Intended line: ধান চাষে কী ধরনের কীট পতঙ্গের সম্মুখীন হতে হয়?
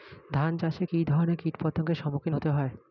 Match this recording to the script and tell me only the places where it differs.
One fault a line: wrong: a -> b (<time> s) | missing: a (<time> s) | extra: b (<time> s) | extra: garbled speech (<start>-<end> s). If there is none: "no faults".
no faults